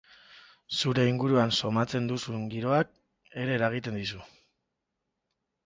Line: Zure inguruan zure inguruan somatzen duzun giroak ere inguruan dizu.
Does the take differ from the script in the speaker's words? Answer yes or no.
yes